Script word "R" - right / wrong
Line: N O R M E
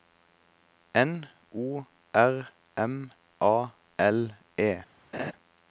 right